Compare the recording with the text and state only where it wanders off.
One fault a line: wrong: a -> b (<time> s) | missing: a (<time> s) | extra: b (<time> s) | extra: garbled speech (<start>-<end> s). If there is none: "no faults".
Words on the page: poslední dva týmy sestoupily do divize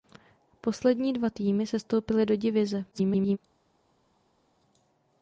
extra: garbled speech (2.9-3.4 s)